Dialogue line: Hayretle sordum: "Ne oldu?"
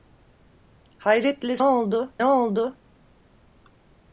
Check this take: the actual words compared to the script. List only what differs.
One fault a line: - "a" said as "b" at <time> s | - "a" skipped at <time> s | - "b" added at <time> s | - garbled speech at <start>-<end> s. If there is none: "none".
- "sordum" said as "oldu" at 1.6 s